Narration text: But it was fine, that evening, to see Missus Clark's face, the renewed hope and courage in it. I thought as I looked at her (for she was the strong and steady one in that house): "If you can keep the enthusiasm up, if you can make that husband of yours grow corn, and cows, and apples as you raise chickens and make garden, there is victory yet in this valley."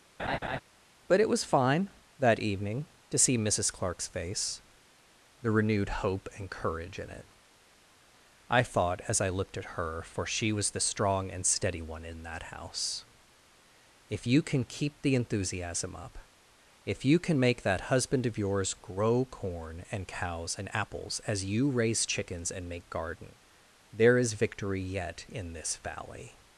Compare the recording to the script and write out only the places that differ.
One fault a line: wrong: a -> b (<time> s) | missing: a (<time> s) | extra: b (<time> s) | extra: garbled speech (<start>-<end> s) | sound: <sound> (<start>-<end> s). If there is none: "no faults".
sound: laugh (0.2-0.6 s)